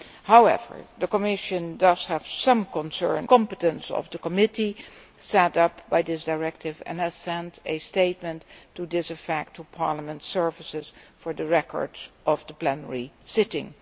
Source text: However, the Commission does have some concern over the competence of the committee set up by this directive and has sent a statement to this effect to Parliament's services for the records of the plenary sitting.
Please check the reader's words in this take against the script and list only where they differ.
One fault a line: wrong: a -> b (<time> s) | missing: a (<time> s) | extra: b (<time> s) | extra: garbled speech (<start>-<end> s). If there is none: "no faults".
missing: over the (3.3 s)